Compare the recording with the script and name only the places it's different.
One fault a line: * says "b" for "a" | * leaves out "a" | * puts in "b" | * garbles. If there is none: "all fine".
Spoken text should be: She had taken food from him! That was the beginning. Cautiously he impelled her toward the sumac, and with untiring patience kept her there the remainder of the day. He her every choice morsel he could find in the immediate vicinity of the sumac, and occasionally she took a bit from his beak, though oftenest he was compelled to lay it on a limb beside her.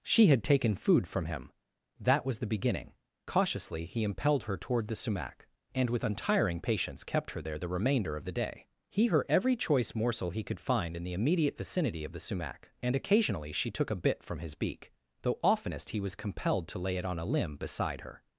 all fine